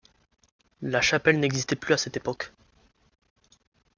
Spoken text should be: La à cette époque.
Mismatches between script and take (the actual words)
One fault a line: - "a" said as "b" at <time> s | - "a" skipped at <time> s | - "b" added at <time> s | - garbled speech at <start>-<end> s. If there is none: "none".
- "chapelle n'existait plus" added at 1.0 s